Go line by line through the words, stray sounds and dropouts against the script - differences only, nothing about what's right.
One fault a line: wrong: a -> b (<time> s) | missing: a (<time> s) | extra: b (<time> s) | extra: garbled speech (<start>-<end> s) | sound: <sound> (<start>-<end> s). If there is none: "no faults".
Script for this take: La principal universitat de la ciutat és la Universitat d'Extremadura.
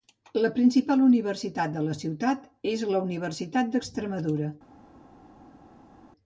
no faults